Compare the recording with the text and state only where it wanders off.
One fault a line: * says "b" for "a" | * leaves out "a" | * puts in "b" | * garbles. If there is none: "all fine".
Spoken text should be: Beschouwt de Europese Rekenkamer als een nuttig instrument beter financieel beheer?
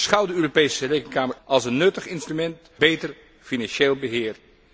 all fine